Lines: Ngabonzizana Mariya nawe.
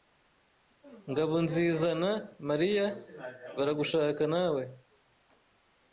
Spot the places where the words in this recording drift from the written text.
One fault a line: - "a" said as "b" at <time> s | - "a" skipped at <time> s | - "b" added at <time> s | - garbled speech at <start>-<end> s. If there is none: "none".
- "baragushaka" added at 3.5 s